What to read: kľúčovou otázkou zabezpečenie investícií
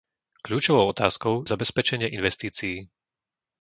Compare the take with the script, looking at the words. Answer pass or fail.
pass